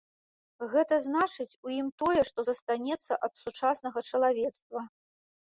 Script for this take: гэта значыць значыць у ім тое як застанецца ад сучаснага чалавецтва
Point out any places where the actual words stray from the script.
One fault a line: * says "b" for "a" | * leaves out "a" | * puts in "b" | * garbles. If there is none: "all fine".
* leaves out "значыць"
* says "што" for "як"